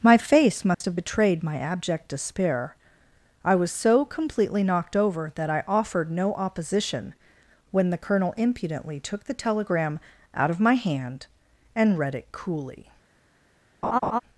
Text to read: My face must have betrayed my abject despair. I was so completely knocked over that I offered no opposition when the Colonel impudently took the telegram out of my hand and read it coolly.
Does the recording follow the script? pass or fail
pass